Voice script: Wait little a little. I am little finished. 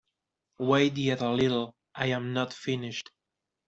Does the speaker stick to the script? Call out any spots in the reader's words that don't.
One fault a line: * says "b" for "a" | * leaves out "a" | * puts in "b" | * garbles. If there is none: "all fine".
* says "yet" for "little"
* says "not" for "little"